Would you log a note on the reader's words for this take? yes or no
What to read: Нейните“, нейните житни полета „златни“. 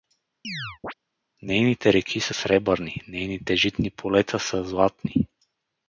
yes